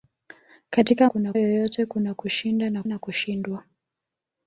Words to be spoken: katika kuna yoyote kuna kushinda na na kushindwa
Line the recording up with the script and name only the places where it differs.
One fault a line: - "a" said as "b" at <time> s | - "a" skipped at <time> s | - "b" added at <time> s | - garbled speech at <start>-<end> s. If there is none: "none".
none